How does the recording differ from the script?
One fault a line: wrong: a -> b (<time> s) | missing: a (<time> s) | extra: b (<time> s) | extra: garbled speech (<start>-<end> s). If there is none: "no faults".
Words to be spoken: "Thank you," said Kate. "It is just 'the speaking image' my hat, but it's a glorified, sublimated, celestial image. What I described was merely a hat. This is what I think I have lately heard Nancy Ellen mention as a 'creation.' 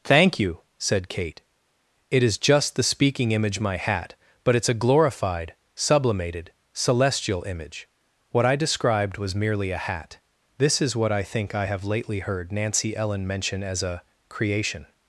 no faults